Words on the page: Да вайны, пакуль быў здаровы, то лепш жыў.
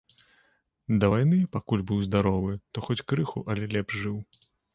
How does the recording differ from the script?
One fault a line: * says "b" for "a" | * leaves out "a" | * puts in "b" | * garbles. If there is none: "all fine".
* puts in "хоць крыху але"